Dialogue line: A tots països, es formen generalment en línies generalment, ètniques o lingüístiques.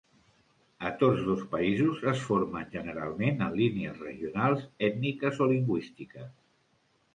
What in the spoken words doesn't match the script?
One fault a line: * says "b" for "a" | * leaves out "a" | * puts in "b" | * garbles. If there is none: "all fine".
* puts in "dos"
* says "regionals" for "generalment"